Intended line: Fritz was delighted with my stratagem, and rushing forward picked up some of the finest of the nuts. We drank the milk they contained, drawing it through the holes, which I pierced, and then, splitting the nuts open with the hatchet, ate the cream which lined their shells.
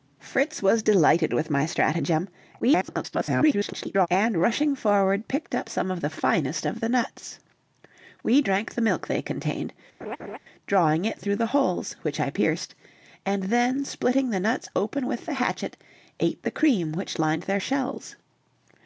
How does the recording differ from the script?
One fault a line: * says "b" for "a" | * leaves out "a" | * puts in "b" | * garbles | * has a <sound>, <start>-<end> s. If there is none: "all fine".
* garbles
* has a laugh, 10.0-10.4 s